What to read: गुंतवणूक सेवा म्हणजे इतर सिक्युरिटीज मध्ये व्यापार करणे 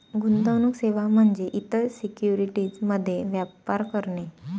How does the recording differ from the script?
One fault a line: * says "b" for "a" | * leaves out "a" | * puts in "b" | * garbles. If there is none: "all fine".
all fine